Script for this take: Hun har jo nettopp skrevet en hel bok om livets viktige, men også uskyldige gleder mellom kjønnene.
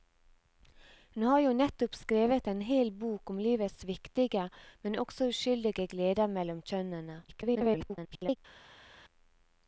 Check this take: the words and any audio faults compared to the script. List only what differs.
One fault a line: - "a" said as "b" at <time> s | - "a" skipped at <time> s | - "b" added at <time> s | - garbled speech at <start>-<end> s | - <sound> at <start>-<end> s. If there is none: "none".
- garbled speech at 7.3-8.4 s